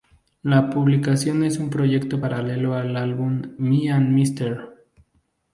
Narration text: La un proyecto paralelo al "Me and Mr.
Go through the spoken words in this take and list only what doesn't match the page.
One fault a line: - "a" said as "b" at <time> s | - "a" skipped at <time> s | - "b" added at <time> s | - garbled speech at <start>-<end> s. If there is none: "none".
- "publicación es" added at 0.7 s
- "álbum" added at 3.0 s